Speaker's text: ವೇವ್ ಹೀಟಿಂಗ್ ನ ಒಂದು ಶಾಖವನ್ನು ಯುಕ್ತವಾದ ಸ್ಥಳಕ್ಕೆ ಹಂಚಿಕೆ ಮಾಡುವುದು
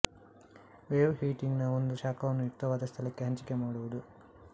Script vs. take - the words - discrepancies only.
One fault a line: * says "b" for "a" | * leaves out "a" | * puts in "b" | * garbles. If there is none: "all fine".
all fine